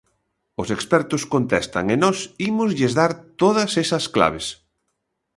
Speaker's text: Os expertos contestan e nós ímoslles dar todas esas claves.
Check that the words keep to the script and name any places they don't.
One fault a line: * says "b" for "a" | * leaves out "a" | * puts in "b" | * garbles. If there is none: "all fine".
all fine